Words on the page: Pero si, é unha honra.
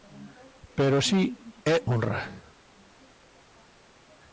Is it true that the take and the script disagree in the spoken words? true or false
true